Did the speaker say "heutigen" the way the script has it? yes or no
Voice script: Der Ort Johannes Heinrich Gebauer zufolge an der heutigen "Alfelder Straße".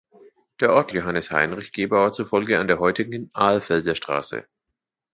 yes